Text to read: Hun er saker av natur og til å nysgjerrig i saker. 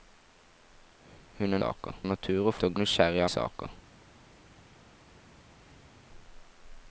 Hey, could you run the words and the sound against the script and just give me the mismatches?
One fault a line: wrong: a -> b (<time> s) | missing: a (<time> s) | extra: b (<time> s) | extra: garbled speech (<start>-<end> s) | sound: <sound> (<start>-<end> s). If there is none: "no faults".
no faults